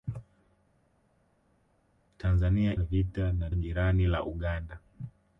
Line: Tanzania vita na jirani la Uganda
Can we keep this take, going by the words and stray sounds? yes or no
yes